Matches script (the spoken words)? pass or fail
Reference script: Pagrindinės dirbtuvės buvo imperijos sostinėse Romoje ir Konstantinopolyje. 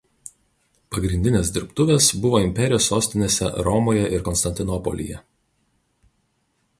pass